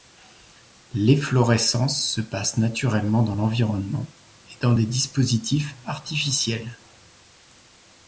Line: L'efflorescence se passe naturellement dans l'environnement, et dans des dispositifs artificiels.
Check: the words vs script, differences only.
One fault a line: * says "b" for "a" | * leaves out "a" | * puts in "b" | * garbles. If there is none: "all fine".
all fine